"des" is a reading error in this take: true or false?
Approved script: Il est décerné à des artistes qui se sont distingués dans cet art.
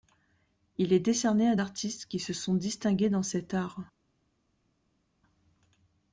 true